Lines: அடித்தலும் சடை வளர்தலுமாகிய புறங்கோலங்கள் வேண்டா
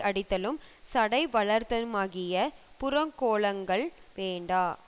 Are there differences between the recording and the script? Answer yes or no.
no